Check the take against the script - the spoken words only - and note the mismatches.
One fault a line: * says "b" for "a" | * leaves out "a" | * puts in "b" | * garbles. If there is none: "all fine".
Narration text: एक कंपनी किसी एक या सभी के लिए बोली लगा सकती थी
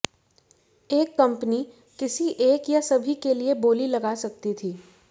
all fine